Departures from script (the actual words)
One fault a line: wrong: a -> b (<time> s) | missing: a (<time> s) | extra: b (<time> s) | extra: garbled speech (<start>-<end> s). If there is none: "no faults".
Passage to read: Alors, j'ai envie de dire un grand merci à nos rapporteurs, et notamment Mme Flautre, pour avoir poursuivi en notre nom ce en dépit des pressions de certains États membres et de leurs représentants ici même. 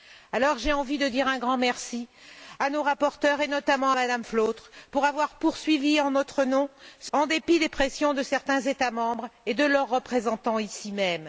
no faults